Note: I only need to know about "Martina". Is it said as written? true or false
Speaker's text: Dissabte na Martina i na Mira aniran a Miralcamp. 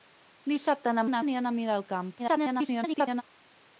false